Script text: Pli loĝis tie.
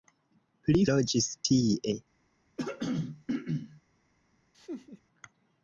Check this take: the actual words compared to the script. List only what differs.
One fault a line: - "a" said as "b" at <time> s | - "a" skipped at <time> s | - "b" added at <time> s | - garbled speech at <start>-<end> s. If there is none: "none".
none